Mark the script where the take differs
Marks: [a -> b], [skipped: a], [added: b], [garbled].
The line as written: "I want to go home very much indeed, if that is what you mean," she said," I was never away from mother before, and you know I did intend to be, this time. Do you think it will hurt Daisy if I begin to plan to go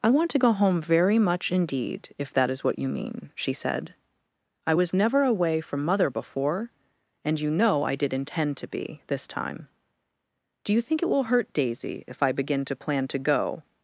"I want to go home very much indeed, if that is what you mean," she said," I was never away from mother before, and you know I did intend to be, this time. Do you think it will hurt Daisy if I begin to plan to go